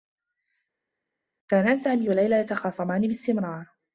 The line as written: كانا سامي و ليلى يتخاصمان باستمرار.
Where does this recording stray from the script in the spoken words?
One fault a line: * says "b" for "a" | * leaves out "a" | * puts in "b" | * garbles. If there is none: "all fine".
all fine